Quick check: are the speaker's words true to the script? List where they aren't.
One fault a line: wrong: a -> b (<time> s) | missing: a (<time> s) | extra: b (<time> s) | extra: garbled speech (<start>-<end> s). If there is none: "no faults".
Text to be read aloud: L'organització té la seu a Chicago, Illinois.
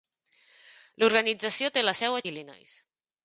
missing: Chicago (2.2 s)